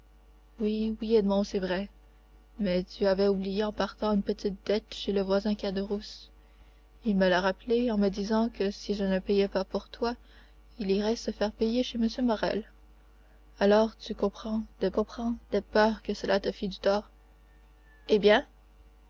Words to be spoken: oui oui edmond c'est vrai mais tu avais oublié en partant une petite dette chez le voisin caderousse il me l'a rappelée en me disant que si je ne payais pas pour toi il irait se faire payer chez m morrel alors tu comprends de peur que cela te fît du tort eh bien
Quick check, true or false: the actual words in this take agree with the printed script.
false